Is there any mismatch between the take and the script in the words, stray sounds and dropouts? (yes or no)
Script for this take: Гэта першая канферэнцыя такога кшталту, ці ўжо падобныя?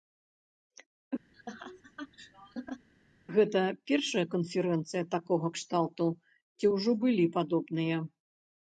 yes